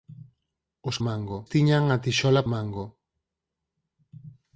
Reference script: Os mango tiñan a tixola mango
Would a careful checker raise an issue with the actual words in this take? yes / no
no